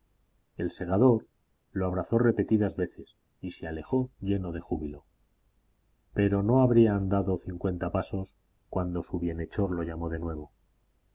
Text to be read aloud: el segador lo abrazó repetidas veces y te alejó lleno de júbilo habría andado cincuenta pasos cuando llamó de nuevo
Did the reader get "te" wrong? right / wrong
wrong